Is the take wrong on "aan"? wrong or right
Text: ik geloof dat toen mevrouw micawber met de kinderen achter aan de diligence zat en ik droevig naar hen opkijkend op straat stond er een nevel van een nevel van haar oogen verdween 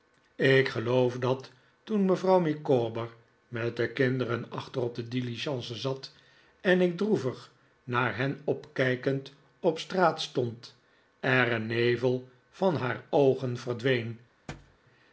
wrong